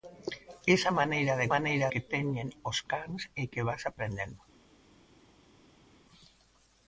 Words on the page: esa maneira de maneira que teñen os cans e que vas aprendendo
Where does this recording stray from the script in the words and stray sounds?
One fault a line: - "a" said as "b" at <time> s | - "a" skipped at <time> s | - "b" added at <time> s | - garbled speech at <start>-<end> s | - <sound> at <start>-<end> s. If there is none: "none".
none